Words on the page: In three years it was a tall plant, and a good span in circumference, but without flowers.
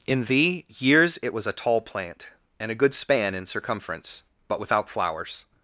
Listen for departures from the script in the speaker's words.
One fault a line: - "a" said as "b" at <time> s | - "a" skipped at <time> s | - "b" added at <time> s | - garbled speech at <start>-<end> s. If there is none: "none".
- "three" said as "thee" at 0.2 s